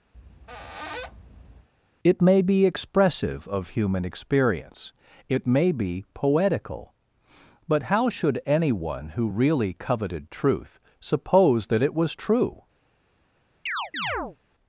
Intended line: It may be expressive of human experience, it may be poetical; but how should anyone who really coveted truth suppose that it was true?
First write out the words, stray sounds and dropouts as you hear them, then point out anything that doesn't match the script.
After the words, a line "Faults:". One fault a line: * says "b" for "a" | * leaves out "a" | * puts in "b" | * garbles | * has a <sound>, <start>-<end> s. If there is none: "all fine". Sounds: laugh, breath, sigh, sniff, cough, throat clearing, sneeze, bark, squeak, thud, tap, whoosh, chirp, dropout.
It may be expressive of human experience, it may be poetical; but how should anyone who really coveted truth suppose that it was true?
Faults:
* has a squeak, 0.1-1.7 s
* has a chirp, 13.7-14.4 s